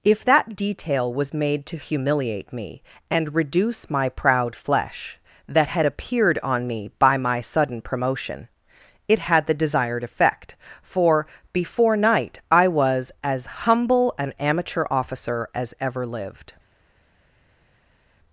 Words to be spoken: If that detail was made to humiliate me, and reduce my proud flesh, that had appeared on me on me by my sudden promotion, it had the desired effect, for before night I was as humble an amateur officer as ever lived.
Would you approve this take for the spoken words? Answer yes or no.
no